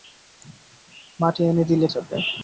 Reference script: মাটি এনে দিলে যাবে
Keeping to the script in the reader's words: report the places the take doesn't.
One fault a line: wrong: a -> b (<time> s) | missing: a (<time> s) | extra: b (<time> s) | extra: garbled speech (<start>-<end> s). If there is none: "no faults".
no faults